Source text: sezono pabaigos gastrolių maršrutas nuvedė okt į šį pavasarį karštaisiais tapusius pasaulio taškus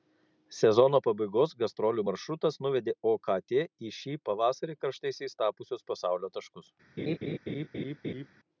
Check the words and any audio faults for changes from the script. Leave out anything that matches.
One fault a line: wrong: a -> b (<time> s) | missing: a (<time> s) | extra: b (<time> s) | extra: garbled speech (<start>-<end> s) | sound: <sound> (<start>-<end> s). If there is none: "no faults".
sound: laugh (7.0-8.3 s)